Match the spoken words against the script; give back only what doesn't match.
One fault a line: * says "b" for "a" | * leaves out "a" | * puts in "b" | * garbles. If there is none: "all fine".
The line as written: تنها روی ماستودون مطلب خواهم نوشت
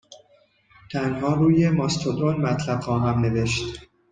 all fine